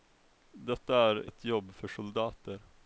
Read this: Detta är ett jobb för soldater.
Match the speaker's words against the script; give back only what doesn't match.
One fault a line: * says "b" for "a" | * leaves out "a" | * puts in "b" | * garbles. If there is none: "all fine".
all fine